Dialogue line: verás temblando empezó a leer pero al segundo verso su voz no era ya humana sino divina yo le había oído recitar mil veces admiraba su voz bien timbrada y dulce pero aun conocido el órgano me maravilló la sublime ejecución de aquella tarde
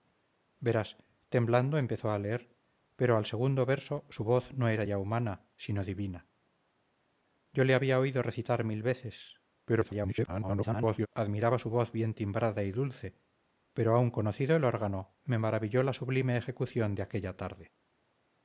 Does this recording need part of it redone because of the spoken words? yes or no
yes